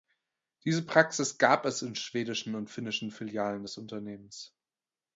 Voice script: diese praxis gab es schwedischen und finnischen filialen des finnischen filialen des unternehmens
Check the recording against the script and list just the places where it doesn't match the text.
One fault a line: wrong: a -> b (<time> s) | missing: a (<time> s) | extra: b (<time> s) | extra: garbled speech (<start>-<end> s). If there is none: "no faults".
extra: in (1.8 s)
missing: finnischen filialen des (3.8 s)